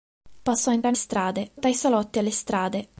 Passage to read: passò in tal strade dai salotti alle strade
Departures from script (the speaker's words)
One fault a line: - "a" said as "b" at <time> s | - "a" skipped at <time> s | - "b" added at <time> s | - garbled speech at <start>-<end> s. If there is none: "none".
none